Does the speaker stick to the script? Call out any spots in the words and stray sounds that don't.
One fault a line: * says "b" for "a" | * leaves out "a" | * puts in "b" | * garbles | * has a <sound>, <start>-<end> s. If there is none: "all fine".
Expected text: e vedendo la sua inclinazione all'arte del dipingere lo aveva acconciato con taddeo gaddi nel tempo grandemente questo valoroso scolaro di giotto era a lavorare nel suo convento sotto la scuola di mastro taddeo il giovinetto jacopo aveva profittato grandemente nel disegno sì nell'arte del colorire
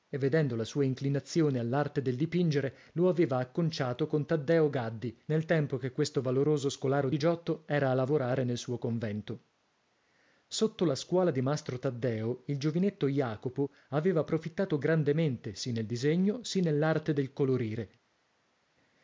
* says "che" for "grandemente"
* puts in "sì"